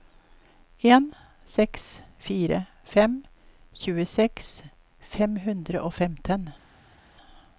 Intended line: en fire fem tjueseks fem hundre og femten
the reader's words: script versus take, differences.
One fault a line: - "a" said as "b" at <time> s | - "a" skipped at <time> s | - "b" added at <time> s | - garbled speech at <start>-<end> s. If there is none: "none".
- "seks" added at 1.6 s